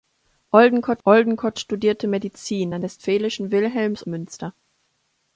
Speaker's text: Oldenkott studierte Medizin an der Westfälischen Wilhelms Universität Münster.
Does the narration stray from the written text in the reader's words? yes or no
yes